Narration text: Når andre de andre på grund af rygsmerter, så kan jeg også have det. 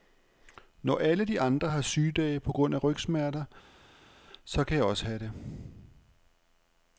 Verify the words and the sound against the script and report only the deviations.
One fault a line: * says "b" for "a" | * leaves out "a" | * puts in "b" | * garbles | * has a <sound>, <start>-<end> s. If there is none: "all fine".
* says "alle" for "andre"
* puts in "har sygedage"